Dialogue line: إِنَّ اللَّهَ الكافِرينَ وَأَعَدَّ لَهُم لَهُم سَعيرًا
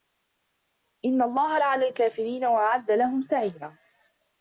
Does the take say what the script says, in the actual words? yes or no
no